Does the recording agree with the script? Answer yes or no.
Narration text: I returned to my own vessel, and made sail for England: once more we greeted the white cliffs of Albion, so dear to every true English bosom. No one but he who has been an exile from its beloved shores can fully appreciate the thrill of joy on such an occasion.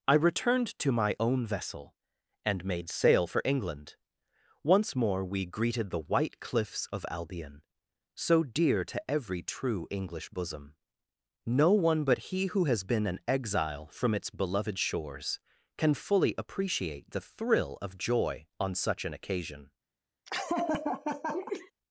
yes